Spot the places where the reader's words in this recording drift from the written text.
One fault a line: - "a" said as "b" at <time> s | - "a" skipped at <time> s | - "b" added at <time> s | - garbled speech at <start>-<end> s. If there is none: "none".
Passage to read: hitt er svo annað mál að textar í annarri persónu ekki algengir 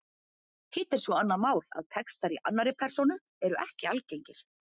- "eru" added at 3.5 s